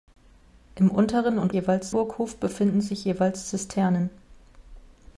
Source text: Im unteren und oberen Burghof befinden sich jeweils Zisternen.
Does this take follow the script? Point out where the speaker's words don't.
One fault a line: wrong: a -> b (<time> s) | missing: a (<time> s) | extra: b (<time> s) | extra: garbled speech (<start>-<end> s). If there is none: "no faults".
wrong: oberen -> jeweils (1.5 s)